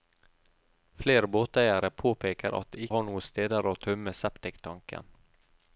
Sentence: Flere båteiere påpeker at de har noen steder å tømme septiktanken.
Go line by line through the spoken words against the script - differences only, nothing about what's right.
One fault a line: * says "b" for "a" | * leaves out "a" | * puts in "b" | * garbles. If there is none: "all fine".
all fine